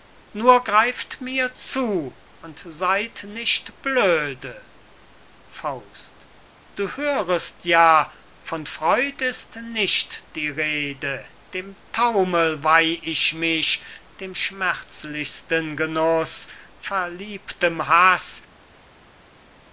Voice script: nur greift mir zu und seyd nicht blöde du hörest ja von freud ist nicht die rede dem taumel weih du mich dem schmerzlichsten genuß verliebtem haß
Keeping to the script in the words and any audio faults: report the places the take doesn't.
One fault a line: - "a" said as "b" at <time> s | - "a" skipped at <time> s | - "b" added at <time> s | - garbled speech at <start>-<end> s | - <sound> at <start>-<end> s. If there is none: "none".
- "du" said as "ich" at 13.0 s